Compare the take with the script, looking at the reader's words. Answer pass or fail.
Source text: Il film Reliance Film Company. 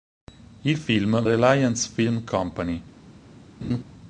pass